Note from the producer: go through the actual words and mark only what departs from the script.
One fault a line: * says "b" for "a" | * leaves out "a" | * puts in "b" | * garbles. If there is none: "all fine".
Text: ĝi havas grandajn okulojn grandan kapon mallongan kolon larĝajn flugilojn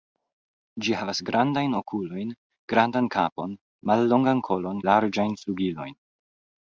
all fine